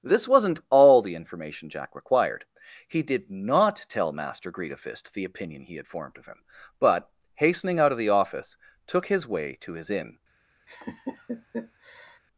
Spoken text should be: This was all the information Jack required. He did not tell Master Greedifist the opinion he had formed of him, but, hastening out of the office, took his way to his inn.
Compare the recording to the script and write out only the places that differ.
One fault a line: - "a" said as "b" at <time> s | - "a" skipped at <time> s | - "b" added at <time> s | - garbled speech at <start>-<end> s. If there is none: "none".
- "was" said as "wasn't" at 0.3 s